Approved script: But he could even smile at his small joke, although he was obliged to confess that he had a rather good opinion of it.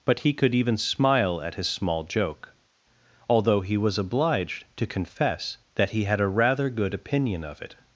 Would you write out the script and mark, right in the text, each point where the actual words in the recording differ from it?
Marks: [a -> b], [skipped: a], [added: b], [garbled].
But he could even smile at his small joke, although he was obliged to confess that he had a rather good opinion of it.